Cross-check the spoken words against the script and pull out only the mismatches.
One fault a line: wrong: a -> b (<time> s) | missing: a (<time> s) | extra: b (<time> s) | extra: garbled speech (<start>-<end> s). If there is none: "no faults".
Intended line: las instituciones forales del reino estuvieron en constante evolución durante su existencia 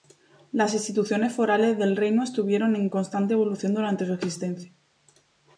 no faults